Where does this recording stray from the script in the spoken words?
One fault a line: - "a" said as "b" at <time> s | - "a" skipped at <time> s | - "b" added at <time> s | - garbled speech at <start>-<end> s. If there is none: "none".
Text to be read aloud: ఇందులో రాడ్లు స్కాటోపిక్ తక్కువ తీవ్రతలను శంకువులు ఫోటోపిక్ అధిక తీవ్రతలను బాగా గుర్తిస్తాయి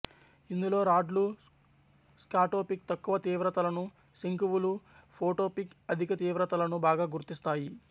none